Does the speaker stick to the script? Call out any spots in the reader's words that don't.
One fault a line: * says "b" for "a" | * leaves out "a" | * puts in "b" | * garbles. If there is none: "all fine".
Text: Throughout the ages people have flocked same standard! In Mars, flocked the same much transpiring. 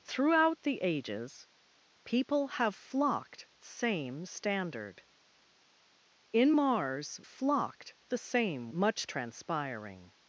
all fine